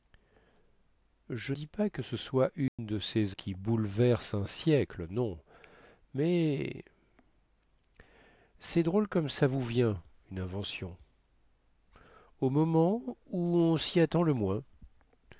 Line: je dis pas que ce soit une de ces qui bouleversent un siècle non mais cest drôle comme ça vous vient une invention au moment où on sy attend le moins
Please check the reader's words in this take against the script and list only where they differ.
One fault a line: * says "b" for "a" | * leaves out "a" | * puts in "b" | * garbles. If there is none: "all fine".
all fine